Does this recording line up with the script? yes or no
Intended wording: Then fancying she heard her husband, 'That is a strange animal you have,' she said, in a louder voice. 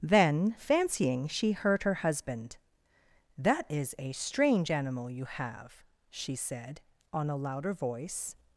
no